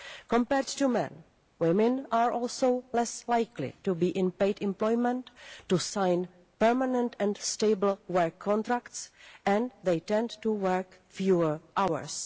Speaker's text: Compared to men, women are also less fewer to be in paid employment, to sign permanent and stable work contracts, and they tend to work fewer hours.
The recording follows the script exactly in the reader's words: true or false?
false